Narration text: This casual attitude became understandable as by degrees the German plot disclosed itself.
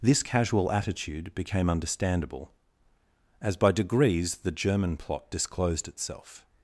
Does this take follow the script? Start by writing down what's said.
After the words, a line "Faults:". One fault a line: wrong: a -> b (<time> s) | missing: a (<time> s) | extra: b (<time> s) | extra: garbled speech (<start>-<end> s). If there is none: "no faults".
This casual attitude became understandable as by degrees the German plot disclosed itself.
Faults:
no faults